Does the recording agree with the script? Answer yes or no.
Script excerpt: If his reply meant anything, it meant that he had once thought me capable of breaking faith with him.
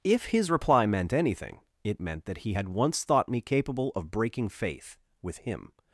yes